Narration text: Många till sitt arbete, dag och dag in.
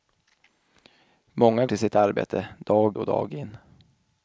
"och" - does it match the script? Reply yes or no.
yes